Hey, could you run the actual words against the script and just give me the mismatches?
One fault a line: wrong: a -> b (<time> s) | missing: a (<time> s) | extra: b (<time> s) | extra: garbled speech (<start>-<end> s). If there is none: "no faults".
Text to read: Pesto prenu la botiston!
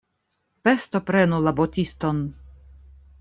no faults